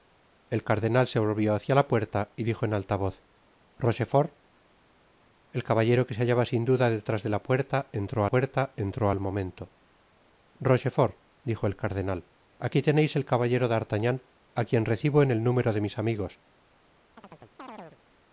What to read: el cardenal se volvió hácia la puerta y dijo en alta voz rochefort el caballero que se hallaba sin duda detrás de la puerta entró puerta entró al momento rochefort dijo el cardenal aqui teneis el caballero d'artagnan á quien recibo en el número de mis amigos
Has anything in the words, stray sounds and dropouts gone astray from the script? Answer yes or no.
yes